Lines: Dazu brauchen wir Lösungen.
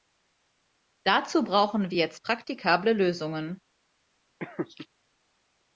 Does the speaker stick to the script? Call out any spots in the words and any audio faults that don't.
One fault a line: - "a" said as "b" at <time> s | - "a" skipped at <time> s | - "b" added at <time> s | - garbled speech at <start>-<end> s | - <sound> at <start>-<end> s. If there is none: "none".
- "jetzt praktikable" added at 2.0 s
- laugh at 4.4-4.9 s